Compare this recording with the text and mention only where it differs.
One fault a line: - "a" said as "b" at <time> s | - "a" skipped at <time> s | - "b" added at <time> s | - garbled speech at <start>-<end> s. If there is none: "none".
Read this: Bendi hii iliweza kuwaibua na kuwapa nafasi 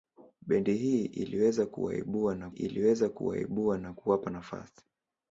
- "iliweza kuwaibua na" added at 2.5 s